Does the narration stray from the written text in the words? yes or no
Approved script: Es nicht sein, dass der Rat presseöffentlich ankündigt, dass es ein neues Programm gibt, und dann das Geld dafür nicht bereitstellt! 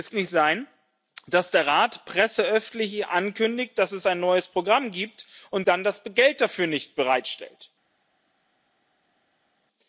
no